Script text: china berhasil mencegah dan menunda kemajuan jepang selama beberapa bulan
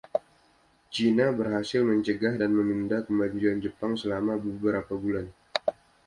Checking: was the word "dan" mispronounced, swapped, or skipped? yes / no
no